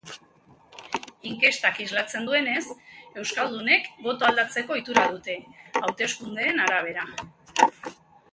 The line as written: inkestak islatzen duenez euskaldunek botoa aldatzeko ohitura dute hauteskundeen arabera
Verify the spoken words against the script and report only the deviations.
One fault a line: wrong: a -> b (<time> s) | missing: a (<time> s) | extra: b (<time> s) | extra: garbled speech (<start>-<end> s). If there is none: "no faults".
no faults